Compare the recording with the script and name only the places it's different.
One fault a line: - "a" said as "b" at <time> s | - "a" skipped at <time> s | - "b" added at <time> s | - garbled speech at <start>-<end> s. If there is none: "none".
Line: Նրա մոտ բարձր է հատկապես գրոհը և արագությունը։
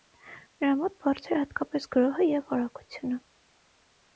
none